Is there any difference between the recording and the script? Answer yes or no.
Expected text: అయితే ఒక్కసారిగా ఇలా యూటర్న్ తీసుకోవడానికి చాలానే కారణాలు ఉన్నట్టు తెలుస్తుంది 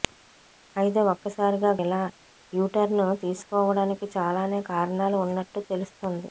no